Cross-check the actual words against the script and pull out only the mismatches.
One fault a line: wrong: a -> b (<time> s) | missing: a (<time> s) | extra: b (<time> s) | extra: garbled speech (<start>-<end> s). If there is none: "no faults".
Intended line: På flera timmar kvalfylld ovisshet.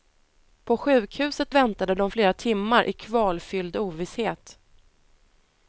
extra: sjukhuset väntade de (0.8 s)
extra: i (2.8 s)